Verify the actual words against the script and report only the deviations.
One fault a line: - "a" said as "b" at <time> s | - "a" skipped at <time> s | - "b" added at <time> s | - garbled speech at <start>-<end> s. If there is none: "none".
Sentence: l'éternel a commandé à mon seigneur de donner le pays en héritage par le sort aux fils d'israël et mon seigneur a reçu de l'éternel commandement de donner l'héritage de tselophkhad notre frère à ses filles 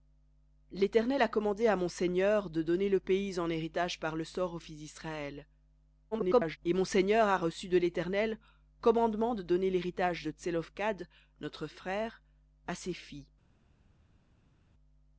- garbled speech at 6.1-6.6 s